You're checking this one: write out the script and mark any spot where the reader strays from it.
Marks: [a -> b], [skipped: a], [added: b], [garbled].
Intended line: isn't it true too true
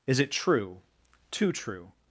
[isn't -> is] it true too true